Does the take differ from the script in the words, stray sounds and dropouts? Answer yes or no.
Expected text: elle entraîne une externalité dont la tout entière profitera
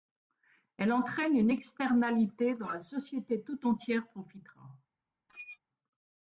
yes